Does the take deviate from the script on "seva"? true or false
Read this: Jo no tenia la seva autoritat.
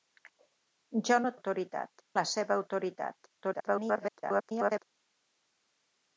false